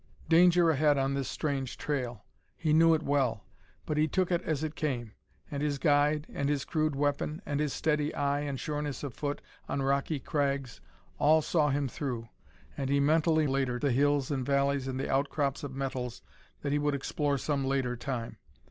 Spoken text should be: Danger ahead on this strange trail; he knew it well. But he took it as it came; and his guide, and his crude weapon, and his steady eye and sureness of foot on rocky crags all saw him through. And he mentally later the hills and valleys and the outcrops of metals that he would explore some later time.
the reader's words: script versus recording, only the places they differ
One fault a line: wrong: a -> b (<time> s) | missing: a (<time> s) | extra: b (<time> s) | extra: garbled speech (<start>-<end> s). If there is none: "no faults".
no faults